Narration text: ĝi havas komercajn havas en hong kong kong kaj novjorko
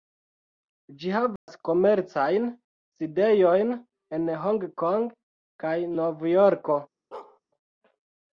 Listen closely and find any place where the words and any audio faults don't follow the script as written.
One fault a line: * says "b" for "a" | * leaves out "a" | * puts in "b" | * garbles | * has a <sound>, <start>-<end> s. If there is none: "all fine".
* has a dropout, 1.4-1.5 s
* says "sidejojn" for "havas"
* leaves out "kong"
* has a bark, 7.1-7.4 s